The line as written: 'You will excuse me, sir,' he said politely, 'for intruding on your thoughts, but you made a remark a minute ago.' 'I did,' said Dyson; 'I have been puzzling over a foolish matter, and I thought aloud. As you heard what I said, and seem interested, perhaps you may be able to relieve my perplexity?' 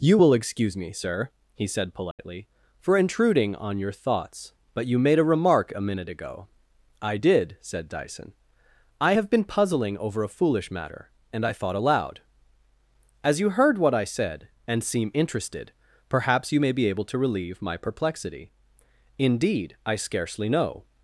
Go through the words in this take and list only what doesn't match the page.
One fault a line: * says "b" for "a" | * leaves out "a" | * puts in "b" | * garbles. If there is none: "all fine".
* puts in "Indeed I scarcely know"